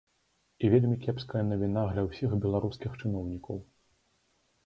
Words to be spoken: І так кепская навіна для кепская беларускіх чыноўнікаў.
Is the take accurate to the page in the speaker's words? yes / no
no